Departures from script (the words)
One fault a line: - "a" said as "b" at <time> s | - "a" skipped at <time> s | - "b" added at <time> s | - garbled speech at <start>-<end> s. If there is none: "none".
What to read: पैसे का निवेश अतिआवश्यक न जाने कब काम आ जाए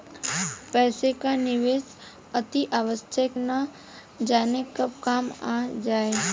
none